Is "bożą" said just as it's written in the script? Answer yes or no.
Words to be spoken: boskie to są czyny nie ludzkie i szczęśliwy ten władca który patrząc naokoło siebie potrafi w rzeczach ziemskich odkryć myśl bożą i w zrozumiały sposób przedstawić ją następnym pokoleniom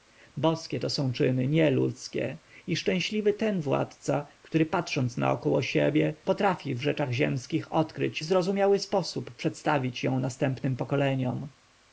no